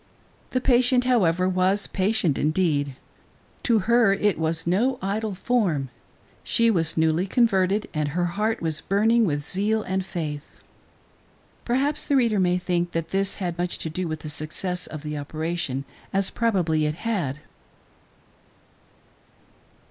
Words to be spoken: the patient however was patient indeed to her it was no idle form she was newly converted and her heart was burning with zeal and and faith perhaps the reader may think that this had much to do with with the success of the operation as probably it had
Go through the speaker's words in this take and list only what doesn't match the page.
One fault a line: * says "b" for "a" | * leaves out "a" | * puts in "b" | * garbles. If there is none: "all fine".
* leaves out "and"
* leaves out "with"